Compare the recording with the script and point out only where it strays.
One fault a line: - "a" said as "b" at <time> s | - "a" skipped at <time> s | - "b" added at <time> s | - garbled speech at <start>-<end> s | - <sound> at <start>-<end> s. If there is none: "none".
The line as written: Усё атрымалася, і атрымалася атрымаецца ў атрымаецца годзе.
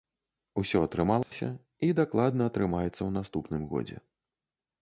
- dropout at 1.2-1.3 s
- "атрымалася" said as "дакладна" at 2.0 s
- "атрымаецца" said as "наступным" at 3.2 s